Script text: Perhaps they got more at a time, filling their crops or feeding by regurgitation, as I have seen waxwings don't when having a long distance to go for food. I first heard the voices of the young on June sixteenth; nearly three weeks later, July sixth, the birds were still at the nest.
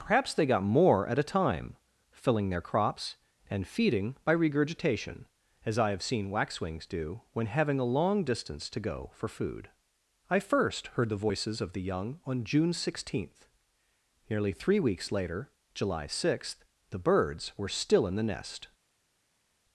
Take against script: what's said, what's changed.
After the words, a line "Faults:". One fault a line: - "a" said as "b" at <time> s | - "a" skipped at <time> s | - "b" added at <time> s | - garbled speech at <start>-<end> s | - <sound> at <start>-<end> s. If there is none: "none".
Perhaps they got more at a time, filling their crops and feeding by regurgitation, as I have seen waxwings do when having a long distance to go for food. I first heard the voices of the young on June sixteenth; nearly three weeks later, July sixth, the birds were still in the nest.
Faults:
- "or" said as "and" at 3.5 s
- "don't" said as "do" at 6.9 s
- "at" said as "in" at 18.1 s